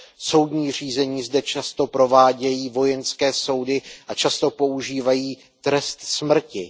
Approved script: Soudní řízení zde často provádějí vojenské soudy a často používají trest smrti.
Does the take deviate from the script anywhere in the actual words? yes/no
no